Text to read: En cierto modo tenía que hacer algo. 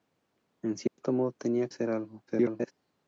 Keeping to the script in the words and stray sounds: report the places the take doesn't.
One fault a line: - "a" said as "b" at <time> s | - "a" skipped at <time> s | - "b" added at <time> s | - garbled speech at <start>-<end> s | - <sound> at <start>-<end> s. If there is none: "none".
- dropout at 0.9-1.0 s
- "que" skipped at 1.7 s
- garbled speech at 2.3-2.7 s